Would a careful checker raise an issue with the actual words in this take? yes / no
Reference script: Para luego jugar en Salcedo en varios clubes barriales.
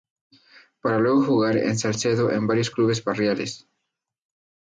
no